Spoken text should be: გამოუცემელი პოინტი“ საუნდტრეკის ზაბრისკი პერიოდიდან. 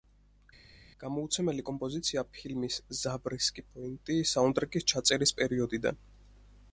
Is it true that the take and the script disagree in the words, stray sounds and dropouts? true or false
true